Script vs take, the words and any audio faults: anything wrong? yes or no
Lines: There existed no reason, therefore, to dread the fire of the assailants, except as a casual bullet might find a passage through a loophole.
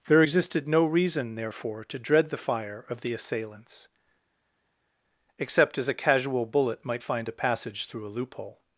no